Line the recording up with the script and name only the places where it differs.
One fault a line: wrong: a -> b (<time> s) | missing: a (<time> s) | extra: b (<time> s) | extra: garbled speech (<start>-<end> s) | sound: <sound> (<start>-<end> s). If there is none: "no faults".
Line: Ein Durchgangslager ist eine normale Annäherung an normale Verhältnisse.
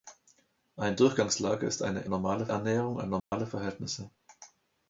sound: dropout (3.2-3.3 s)